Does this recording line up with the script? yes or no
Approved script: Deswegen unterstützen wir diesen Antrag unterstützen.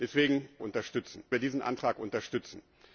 yes